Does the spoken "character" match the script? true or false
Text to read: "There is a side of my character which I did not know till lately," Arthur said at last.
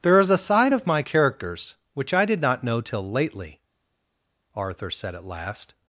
false